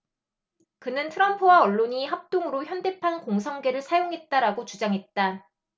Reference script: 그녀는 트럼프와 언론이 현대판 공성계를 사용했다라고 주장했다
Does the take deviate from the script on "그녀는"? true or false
true